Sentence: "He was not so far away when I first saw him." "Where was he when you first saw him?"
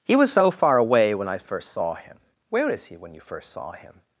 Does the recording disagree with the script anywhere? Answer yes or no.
yes